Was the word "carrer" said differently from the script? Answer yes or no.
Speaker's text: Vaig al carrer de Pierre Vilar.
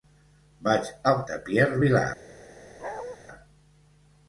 yes